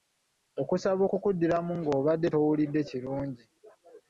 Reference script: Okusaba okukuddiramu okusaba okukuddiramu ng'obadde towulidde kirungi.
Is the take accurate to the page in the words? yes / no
no